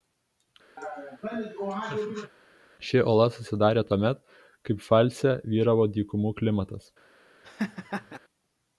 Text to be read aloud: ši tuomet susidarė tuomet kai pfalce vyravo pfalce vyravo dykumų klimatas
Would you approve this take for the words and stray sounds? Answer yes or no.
no